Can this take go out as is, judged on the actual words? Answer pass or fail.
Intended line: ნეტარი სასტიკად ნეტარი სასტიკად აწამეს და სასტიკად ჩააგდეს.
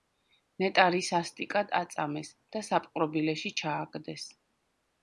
fail